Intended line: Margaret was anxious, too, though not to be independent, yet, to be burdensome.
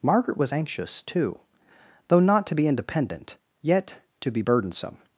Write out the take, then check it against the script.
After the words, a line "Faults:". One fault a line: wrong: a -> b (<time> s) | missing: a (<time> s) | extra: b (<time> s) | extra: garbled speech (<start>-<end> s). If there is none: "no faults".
Margaret was anxious, too, though not to be independent, yet, to be burdensome.
Faults:
no faults